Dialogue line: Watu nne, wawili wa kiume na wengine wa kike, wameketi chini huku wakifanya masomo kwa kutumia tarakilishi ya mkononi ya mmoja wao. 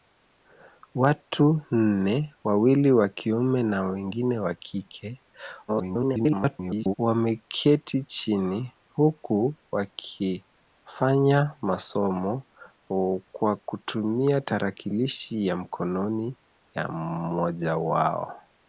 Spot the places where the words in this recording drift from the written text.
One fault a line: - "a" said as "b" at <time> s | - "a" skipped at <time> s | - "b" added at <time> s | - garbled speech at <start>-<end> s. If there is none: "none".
- garbled speech at 5.7-6.9 s